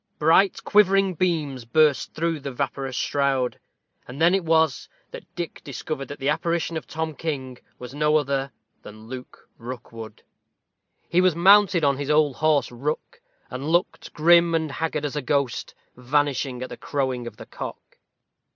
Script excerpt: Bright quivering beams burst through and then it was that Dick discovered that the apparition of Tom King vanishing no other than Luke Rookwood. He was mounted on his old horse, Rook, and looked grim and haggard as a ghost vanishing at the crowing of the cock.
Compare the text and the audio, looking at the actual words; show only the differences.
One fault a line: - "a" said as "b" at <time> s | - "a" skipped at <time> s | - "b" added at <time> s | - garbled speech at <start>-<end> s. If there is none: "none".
- "the vaporous shroud" added at 2.4 s
- "vanishing" said as "was" at 7.8 s